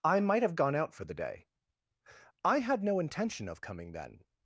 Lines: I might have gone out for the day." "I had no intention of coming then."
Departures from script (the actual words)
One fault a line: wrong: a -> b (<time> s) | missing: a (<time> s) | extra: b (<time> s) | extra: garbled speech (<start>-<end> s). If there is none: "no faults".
no faults